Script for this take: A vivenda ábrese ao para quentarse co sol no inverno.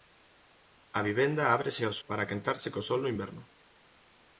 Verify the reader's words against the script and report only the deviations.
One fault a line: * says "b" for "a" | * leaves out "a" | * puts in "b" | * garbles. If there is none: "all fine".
all fine